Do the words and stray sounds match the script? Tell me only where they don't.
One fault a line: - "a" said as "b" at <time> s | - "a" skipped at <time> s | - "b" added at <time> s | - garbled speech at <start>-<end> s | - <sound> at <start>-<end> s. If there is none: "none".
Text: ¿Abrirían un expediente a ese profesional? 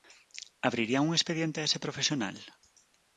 none